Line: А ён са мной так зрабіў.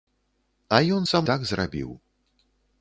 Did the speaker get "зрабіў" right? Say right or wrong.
right